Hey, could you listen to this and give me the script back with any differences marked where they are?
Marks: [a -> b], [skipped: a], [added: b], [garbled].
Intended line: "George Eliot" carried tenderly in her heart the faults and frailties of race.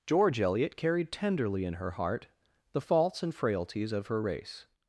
"George Eliot" carried tenderly in her heart the faults and frailties of [added: her] race.